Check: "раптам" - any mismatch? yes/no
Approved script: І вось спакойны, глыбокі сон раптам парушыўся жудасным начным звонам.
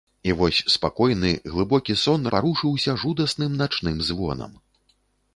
yes